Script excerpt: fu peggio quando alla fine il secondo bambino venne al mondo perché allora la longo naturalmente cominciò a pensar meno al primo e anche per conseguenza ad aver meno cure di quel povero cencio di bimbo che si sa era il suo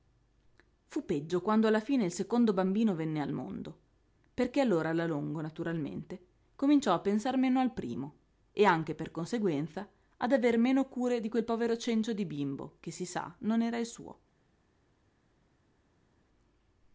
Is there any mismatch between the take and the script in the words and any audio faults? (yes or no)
yes